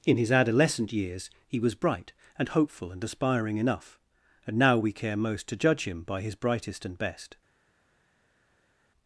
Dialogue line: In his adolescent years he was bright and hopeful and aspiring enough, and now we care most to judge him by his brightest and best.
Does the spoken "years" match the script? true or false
true